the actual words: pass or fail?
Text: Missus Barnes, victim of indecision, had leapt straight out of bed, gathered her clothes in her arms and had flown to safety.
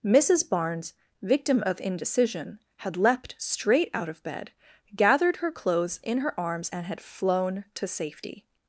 pass